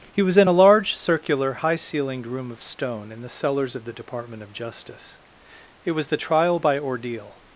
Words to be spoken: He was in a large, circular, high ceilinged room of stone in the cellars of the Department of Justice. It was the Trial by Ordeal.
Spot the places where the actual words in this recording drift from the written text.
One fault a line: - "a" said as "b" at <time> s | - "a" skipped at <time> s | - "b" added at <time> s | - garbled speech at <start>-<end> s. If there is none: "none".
none